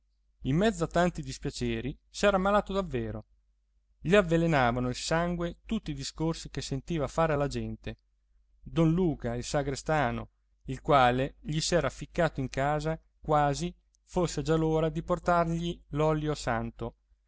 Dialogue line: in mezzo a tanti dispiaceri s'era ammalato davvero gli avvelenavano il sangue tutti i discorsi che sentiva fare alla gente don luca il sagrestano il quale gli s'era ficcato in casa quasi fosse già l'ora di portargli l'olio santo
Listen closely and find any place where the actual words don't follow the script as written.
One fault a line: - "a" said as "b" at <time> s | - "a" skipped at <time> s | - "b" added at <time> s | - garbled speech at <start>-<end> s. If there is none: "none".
none